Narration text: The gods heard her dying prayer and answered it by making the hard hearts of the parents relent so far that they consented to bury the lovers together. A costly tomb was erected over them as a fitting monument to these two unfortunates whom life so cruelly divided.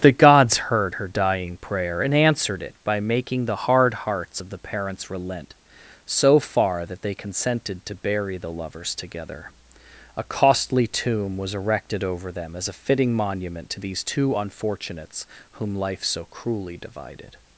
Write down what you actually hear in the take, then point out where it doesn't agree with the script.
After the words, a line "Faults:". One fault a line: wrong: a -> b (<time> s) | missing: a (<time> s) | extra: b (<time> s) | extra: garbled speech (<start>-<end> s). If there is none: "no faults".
The gods heard her dying prayer and answered it by making the hard hearts of the parents relent so far that they consented to bury the lovers together. A costly tomb was erected over them as a fitting monument to these two unfortunates whom life so cruelly divided.
Faults:
no faults